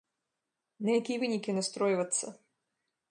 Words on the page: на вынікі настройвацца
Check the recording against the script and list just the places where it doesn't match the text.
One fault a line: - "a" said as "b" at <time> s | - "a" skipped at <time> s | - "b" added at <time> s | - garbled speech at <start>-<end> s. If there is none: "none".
- "якія" added at 1.0 s